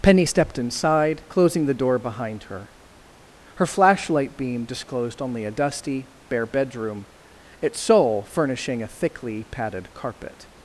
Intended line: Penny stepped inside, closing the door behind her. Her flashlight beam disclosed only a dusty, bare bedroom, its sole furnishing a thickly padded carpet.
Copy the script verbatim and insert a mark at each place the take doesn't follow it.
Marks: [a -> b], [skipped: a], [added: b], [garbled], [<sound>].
Penny stepped inside, closing the door behind her. Her flashlight beam disclosed only a dusty, bare bedroom, its sole furnishing a thickly padded carpet.